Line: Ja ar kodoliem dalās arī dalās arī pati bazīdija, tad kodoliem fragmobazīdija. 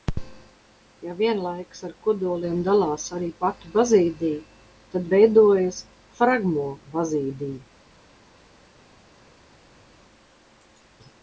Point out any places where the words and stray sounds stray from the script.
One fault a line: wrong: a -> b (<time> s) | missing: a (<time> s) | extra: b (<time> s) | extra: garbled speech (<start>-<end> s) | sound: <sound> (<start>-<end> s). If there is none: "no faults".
extra: vienlaikus (1.2 s)
missing: dalās arī (3.3 s)
wrong: kodoliem -> veidojas (5.2 s)